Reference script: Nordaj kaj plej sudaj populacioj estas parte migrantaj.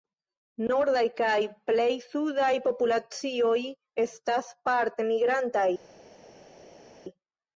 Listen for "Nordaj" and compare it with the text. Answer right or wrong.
right